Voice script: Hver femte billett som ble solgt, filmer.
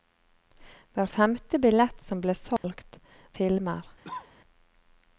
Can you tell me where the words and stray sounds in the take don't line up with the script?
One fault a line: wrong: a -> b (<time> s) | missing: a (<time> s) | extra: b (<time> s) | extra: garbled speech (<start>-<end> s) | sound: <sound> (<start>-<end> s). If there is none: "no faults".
sound: dropout (2.6-2.6 s)
sound: cough (4.0-4.3 s)